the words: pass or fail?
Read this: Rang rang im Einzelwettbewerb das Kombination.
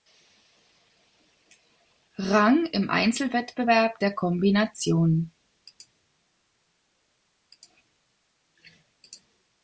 fail